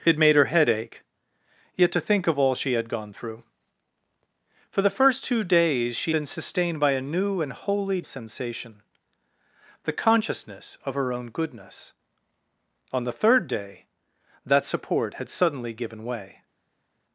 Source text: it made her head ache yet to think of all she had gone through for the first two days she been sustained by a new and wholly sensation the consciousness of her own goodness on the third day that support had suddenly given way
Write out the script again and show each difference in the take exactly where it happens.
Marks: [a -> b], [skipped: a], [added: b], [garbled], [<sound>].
it made her head ache yet to think of all she had gone through for the first two days she been sustained by a new and wholly sensation the consciousness of her own goodness on the third day that support had suddenly given way